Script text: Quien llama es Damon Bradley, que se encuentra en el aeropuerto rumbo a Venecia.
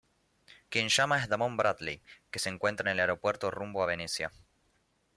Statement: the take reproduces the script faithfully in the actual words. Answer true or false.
true